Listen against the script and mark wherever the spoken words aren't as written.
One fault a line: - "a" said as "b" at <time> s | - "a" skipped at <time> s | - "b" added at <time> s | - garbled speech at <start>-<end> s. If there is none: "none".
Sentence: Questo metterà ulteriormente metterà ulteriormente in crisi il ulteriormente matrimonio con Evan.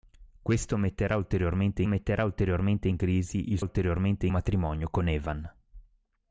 none